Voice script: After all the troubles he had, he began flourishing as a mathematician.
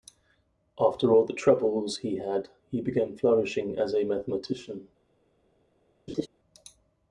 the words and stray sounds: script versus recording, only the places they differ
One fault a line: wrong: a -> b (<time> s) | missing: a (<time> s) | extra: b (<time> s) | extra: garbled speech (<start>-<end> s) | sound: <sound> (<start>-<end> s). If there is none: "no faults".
sound: laugh (6.1-6.3 s)